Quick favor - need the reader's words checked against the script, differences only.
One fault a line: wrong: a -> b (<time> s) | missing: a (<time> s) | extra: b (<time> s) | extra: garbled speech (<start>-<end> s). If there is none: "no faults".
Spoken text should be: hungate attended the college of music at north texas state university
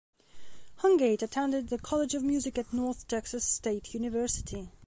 no faults